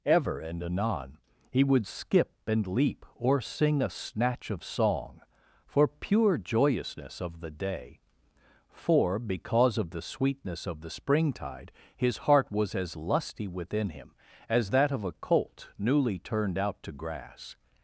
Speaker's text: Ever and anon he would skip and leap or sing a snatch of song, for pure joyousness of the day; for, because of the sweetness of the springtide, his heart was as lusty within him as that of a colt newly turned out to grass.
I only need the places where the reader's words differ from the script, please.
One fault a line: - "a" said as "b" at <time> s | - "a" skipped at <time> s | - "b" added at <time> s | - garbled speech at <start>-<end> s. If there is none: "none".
none